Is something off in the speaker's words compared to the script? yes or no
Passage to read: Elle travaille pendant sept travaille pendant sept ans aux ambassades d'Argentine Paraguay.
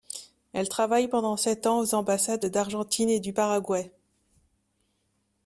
yes